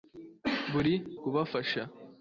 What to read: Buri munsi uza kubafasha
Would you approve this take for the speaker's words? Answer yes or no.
no